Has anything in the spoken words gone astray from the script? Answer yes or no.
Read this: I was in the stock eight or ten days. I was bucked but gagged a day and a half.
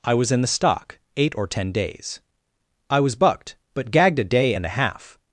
no